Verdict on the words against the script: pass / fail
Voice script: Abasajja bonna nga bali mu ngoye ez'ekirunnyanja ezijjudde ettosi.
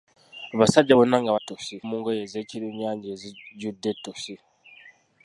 fail